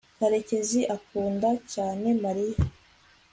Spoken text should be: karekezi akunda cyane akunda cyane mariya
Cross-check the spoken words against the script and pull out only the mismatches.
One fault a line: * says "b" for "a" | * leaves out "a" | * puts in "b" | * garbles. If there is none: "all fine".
* leaves out "akunda cyane"